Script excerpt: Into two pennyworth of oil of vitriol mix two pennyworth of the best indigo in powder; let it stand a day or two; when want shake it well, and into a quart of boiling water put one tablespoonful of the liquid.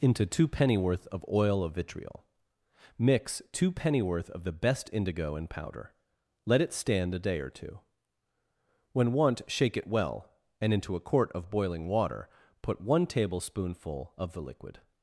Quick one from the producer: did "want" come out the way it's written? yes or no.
yes